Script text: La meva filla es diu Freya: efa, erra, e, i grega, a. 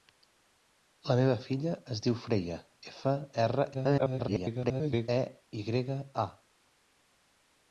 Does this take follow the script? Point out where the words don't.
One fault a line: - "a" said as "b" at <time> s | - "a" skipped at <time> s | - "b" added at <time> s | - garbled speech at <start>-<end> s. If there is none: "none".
- garbled speech at 3.7-5.1 s